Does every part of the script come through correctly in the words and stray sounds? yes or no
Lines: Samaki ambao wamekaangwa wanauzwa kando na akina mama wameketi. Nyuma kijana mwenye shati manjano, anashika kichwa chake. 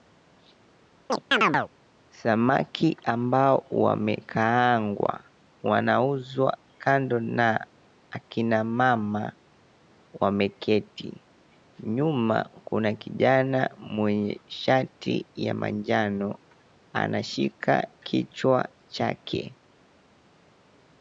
no